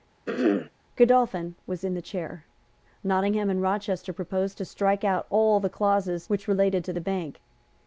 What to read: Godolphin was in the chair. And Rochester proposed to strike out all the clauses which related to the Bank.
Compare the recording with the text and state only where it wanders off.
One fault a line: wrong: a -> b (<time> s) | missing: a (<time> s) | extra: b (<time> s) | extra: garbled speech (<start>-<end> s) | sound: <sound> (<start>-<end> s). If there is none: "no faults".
sound: throat clearing (0.3-0.7 s)
extra: Nottingham (3.0 s)